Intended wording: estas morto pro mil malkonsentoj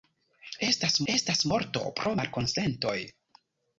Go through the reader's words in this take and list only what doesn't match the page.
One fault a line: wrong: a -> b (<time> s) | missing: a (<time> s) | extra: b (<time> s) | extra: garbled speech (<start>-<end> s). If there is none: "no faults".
extra: estas (1.1 s)
missing: mil (2.1 s)